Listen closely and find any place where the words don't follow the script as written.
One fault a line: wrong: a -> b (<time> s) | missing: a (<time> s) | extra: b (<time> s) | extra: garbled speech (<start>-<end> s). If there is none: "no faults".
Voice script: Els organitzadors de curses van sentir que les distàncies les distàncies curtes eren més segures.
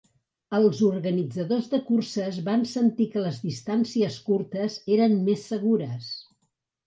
missing: les distàncies (4.2 s)